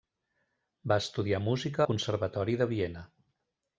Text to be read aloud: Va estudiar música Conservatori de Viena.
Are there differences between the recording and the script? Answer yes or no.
no